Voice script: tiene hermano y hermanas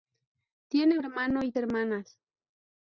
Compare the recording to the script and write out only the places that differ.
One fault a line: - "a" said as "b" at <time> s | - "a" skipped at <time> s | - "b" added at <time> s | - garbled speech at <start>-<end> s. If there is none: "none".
none